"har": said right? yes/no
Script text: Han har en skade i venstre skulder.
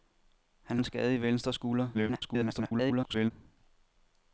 no